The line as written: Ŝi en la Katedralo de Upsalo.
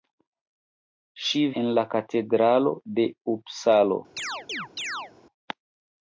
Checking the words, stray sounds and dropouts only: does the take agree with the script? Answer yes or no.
no